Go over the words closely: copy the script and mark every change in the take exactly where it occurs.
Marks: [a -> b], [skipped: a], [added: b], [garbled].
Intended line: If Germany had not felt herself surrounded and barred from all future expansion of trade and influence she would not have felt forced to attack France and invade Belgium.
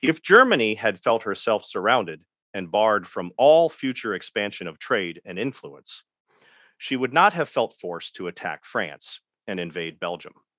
If Germany had [skipped: not] felt herself surrounded and barred from all future expansion of trade and influence she would not have felt forced to attack France and invade Belgium.